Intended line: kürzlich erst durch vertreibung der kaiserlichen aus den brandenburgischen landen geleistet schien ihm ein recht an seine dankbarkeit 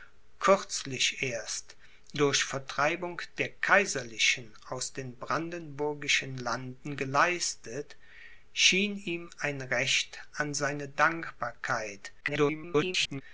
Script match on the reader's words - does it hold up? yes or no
no